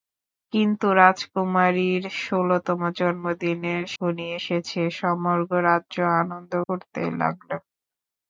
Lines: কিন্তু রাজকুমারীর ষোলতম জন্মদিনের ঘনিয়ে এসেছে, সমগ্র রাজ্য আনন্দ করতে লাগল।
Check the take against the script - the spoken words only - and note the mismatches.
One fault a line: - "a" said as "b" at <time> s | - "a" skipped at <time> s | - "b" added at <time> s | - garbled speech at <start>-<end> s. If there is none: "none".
none